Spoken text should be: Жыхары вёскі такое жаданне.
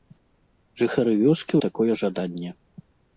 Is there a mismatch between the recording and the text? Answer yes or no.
no